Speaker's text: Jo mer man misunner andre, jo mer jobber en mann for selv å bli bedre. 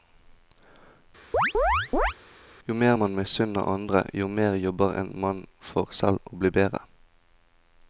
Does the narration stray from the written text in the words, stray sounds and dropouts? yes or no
yes